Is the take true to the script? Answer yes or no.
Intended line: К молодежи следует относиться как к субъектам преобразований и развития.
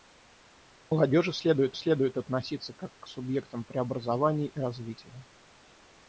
no